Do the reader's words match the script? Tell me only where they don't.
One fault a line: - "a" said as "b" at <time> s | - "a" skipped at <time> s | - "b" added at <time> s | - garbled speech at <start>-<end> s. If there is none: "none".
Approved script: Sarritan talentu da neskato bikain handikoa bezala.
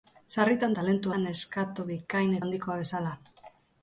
none